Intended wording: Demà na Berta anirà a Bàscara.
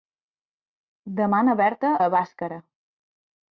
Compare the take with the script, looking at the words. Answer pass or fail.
fail